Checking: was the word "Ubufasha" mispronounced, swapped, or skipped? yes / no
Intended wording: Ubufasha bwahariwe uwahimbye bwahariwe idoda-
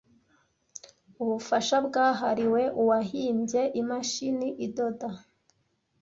no